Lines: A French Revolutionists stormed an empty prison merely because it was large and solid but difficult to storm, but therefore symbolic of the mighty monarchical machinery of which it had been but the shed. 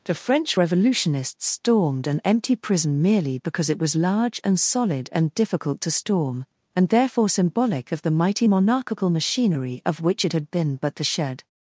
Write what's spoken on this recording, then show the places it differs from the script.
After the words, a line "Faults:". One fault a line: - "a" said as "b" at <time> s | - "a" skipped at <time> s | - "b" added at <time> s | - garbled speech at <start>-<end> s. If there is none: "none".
The French Revolutionists stormed an empty prison merely because it was large and solid and difficult to storm, and therefore symbolic of the mighty monarchical machinery of which it had been but the shed.
Faults:
- "A" said as "The" at 0.0 s
- "but" said as "and" at 5.1 s
- "but" said as "and" at 6.7 s